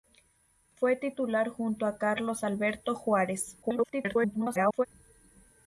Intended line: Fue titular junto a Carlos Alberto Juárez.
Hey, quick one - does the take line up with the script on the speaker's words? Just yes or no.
no